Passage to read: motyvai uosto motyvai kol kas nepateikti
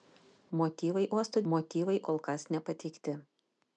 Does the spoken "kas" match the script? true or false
true